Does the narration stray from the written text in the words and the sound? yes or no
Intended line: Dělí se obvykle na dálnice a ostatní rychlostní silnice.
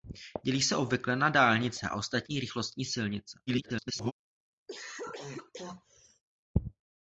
yes